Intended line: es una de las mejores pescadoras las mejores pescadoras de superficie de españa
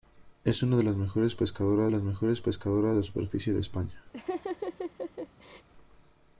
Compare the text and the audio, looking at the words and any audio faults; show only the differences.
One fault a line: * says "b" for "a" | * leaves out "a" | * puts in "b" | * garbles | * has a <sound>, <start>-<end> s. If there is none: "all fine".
* has a laugh, 4.1-5.7 s